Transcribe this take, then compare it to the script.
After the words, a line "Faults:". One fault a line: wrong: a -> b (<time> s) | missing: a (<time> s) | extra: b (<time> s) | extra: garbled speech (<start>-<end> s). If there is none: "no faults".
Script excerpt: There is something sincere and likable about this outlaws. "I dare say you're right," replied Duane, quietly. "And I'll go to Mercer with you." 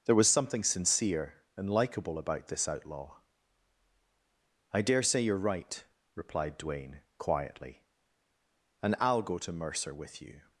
There was something sincere and likable about this outlaw. "I dare say you're right," replied Duane, quietly. "And I'll go to Mercer with you."
Faults:
wrong: is -> was (0.1 s)
wrong: outlaws -> outlaw (2.7 s)